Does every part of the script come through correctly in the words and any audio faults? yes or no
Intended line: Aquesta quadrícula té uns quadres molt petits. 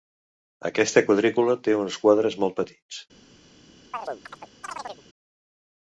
no